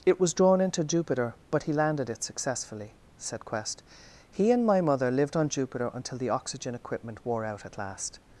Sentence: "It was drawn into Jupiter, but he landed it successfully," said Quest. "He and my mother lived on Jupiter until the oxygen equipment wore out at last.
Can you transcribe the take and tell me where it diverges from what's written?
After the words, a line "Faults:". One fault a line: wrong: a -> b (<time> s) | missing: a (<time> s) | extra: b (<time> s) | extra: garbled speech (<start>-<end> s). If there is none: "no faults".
"It was drawn into Jupiter, but he landed it successfully," said Quest. "He and my mother lived on Jupiter until the oxygen equipment wore out at last.
Faults:
no faults